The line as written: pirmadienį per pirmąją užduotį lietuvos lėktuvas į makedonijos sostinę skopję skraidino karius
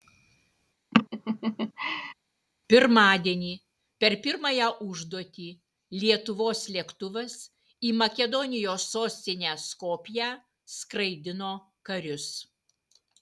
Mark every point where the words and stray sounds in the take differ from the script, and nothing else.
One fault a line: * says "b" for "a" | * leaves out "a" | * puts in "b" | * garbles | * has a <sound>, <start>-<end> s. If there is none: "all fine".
* has a laugh, 0.9-2.1 s